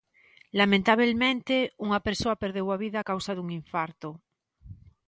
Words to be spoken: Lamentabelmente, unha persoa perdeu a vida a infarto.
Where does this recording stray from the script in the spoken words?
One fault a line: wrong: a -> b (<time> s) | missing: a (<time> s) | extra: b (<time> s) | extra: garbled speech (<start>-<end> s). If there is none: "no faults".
extra: causa dun (3.1 s)